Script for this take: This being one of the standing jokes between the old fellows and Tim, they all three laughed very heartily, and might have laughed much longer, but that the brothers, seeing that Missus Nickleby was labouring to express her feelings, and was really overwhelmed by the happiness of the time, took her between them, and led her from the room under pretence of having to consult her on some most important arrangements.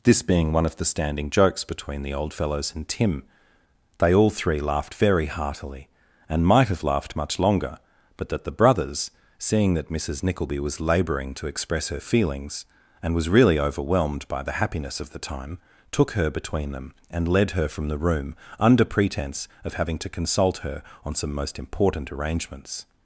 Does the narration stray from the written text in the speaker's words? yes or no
no